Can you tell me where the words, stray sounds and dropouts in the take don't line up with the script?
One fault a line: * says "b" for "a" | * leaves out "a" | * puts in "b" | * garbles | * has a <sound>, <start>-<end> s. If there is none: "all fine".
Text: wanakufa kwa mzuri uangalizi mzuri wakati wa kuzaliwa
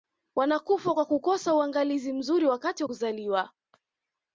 * says "kukosa" for "mzuri"